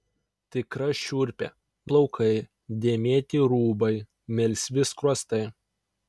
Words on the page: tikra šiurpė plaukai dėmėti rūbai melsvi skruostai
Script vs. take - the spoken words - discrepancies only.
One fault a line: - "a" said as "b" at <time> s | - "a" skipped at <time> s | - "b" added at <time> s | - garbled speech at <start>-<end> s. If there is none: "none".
none